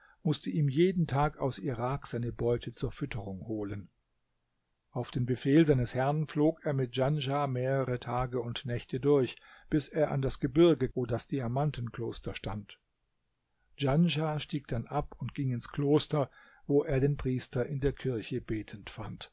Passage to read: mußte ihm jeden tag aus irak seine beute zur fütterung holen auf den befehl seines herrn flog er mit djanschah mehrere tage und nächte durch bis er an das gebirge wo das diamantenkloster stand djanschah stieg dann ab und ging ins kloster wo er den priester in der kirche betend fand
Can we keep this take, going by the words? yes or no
yes